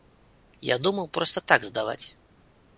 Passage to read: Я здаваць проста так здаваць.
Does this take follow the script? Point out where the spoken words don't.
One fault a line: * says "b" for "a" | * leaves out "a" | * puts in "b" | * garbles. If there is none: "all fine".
* says "думаў" for "здаваць"